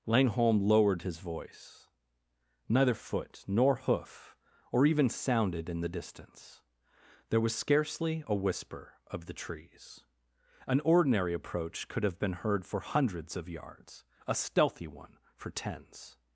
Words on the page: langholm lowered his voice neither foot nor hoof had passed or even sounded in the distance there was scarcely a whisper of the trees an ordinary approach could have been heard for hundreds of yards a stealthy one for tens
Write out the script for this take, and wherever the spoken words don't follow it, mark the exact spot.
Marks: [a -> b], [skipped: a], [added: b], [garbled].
langholm lowered his voice neither foot nor hoof [skipped: had passed] or even sounded in the distance there was scarcely a whisper of the trees an ordinary approach could have been heard for hundreds of yards a stealthy one for tens